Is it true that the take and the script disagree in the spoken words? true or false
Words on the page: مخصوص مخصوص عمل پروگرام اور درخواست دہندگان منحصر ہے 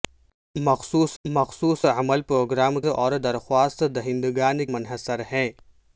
false